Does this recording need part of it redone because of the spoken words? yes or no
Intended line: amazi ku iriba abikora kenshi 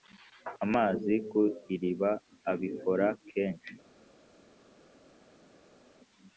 no